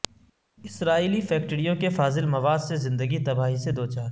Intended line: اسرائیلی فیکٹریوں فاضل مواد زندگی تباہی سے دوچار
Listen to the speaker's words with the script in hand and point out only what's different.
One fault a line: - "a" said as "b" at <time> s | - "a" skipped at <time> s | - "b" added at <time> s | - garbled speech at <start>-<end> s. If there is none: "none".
- "کے" added at 1.8 s
- "سے" added at 2.6 s